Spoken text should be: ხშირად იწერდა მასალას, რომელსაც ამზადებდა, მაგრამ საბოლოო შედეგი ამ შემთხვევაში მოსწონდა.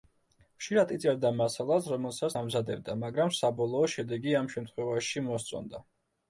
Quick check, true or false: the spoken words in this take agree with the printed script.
true